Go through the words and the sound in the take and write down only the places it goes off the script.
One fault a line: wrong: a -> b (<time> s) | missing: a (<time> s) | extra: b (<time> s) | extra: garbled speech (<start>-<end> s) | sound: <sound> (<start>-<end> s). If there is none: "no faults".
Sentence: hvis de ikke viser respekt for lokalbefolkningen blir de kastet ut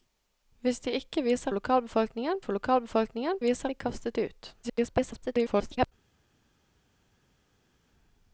wrong: respekt -> lokalbefolkningen (1.5 s)
wrong: blir -> viser (3.4 s)
extra: garbled speech (4.6-5.9 s)